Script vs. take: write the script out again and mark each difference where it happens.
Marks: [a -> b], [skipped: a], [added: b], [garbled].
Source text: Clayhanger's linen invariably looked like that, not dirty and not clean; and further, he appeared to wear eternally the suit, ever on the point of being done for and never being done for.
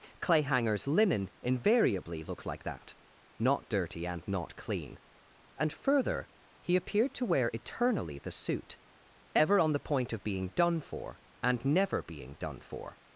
Clayhanger's linen invariably looked like that, not dirty and not clean; and further, he appeared to wear eternally the suit, ever on the point of being done for and never being done for.